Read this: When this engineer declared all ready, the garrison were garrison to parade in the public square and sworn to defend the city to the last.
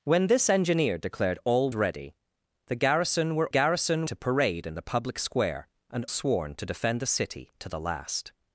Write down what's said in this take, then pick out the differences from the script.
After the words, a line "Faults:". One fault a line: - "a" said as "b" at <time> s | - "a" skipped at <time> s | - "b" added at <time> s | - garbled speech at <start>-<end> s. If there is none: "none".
When this engineer declared all ready, the garrison were garrison to parade in the public square and sworn to defend the city to the last.
Faults:
none